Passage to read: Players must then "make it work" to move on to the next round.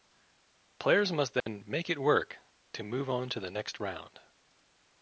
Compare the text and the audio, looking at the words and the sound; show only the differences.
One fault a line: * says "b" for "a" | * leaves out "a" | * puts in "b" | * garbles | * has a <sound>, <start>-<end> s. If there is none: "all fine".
* has a dropout, 1.4-1.5 s